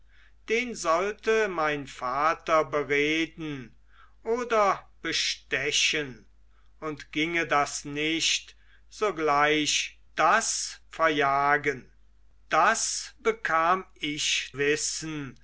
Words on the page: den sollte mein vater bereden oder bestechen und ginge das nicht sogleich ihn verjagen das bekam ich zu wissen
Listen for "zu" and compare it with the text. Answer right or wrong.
wrong